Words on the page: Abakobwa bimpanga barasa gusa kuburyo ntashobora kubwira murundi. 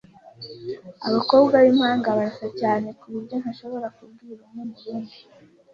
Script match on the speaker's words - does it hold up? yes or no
no